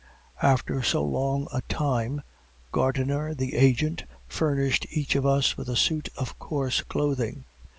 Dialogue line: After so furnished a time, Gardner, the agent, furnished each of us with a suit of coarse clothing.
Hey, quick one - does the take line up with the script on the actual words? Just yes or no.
no